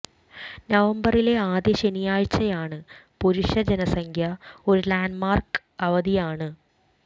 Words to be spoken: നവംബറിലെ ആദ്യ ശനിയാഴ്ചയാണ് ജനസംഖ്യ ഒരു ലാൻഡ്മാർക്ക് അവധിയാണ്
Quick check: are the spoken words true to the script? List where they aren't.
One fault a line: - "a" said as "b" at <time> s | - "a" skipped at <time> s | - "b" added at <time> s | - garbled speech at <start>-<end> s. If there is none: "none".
- "പുരുഷ" added at 3.2 s